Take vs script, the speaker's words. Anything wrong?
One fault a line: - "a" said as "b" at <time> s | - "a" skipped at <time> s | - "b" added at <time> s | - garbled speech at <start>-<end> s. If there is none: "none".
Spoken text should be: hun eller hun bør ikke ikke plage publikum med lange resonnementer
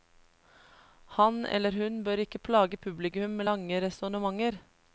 - "hun" said as "han" at 1.2 s
- "ikke" skipped at 2.4 s